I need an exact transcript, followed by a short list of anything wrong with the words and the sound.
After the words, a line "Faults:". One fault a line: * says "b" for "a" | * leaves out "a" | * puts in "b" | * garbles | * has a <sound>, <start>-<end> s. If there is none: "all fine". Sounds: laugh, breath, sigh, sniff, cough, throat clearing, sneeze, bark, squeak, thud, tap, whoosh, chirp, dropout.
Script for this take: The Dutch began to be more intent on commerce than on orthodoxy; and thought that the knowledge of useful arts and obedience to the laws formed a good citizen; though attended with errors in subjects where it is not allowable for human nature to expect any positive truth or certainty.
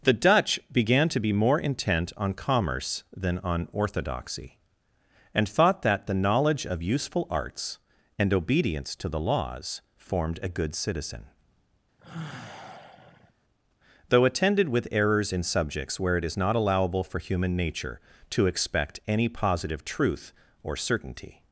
The Dutch began to be more intent on commerce than on orthodoxy; and thought that the knowledge of useful arts and obedience to the laws formed a good citizen; though attended with errors in subjects where it is not allowable for human nature to expect any positive truth or certainty.
Faults:
* has a sigh, 12.0-13.3 s